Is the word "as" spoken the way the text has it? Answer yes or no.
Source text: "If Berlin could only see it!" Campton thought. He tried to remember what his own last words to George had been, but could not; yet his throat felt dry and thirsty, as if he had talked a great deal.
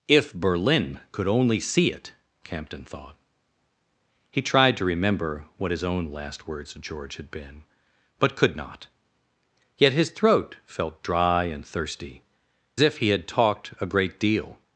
no